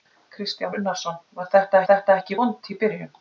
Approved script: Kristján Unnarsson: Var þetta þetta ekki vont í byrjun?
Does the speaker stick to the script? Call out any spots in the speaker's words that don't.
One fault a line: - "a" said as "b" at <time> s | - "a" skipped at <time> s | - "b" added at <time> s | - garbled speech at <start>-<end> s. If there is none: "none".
none